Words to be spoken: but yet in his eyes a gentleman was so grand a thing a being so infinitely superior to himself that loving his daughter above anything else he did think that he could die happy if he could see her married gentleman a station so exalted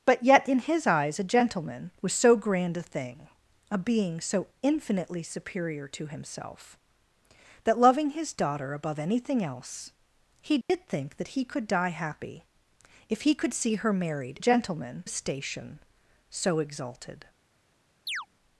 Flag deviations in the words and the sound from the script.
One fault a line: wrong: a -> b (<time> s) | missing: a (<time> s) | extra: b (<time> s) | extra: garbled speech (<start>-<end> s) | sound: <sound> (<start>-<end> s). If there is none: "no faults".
sound: dropout (10.6-10.7 s)
sound: chirp (18.1-18.3 s)